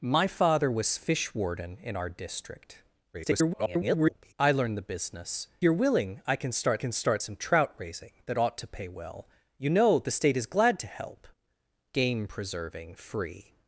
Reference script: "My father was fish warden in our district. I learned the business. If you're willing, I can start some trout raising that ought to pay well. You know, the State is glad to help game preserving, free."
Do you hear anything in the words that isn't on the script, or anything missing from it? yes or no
yes